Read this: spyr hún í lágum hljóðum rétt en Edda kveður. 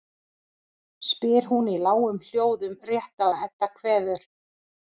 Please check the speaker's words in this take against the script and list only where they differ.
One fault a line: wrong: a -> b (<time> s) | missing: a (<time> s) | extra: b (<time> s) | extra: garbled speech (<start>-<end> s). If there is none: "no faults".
no faults